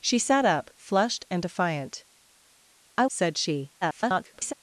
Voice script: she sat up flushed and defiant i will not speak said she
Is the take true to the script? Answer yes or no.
no